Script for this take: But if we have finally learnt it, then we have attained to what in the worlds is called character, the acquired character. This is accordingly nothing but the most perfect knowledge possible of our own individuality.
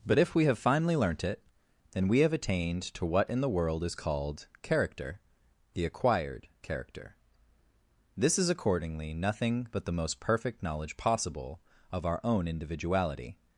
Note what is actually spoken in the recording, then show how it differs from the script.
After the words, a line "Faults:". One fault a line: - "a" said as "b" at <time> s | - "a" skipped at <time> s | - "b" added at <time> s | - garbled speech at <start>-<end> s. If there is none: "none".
But if we have finally learnt it, then we have attained to what in the world is called character, the acquired character. This is accordingly nothing but the most perfect knowledge possible of our own individuality.
Faults:
- "worlds" said as "world" at 3.5 s